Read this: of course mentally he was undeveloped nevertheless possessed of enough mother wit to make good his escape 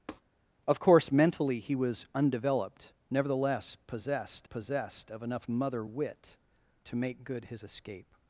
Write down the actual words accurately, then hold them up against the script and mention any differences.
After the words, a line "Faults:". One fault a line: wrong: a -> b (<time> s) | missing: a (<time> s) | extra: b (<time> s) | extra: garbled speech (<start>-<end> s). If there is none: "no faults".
of course mentally he was undeveloped nevertheless possessed possessed of enough mother wit to make good his escape
Faults:
extra: possessed (4.5 s)